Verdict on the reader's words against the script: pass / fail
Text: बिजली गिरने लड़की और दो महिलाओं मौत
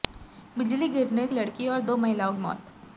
pass